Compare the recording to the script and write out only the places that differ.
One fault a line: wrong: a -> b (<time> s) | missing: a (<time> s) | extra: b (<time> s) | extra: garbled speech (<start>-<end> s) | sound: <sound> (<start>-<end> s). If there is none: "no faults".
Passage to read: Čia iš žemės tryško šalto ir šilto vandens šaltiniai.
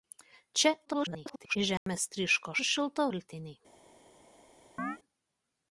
extra: garbled speech (0.8-1.6 s)
sound: dropout (1.8-1.9 s)
missing: šalto (2.5 s)
missing: vandens (3.1 s)
sound: chirp (4.8-5.0 s)